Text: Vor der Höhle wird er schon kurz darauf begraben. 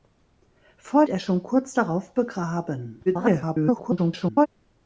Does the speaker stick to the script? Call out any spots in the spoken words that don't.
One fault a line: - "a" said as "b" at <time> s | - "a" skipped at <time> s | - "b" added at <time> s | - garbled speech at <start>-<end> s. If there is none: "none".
- "der Höhle wird" skipped at 1.1 s
- garbled speech at 3.1-4.5 s